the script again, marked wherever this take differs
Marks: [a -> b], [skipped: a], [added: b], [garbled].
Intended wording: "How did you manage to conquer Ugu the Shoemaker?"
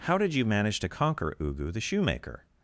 "How did you manage to conquer Ugu the Shoemaker?"